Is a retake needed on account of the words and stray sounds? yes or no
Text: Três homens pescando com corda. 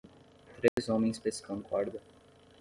yes